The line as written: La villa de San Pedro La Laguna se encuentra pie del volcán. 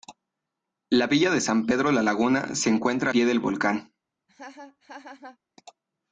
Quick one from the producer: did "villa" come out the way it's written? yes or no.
yes